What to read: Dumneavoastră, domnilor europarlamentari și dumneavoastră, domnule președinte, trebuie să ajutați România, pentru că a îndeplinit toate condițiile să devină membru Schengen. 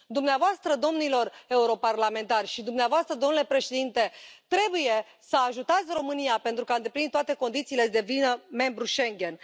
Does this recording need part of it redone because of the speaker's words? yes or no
no